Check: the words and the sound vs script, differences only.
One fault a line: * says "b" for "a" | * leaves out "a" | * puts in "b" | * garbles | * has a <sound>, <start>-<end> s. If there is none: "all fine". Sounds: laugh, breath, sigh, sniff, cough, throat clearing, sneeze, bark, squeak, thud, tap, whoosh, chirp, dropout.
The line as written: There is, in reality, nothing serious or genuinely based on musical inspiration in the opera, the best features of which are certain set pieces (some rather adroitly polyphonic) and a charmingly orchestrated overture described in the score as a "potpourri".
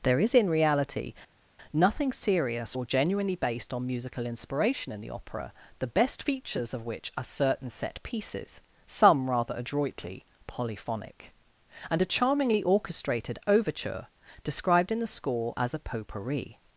all fine